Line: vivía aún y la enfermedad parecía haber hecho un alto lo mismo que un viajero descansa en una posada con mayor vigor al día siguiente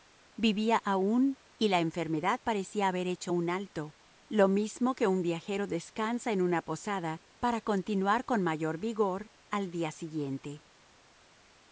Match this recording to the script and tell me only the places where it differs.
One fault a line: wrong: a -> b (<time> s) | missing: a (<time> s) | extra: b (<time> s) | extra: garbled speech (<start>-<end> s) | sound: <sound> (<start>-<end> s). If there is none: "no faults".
extra: para continuar (7.4 s)